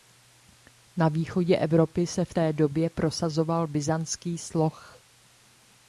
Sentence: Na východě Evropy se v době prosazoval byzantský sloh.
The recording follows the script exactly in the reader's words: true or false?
false